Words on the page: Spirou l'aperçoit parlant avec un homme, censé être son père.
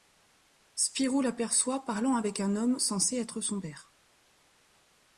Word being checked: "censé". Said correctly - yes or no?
yes